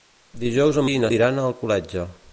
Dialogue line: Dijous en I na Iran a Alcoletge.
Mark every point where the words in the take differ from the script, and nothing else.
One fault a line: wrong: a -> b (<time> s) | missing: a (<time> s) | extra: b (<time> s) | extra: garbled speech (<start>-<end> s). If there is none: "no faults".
no faults